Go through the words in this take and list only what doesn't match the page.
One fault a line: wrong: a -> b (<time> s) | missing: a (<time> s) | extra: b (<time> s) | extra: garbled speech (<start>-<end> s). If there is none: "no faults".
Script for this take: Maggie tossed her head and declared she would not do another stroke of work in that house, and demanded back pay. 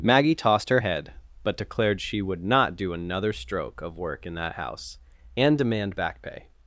wrong: and -> but (1.4 s)
wrong: demanded -> demand (5.6 s)